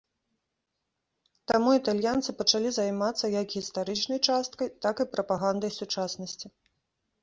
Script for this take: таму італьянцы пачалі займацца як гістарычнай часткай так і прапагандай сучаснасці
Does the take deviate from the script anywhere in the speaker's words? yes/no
no